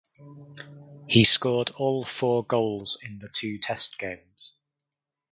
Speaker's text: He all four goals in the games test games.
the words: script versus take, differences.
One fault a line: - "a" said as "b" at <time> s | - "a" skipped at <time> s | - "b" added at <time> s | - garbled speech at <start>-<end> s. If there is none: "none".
- "scored" added at 1.2 s
- "games" said as "two" at 3.3 s